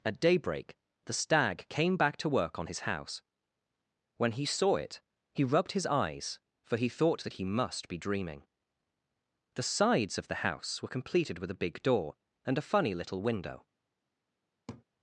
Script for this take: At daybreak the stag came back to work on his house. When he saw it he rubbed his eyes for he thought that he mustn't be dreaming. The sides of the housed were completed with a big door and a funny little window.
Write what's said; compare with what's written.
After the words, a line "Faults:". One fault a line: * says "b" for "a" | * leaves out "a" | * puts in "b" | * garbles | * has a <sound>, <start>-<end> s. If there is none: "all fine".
At daybreak the stag came back to work on his house. When he saw it he rubbed his eyes for he thought that he must be dreaming. The sides of the house were completed with a big door and a funny little window.
Faults:
* says "must" for "mustn't"
* says "house" for "housed"
* has a laugh, 14.7-14.8 s